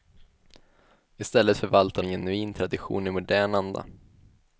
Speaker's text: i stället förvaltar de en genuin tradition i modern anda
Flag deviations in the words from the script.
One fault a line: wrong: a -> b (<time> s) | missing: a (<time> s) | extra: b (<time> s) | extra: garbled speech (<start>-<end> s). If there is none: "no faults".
missing: de (2.0 s)